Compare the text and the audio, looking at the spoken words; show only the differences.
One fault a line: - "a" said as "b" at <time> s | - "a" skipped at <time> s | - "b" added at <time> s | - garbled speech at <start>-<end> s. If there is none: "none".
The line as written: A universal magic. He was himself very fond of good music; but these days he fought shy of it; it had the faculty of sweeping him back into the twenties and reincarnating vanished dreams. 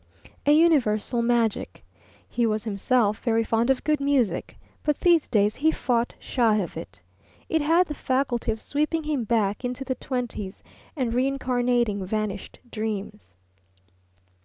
none